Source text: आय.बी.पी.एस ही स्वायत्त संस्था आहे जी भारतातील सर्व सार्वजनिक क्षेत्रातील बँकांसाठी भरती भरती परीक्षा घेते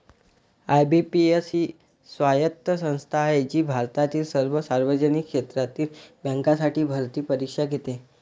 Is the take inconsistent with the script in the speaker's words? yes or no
yes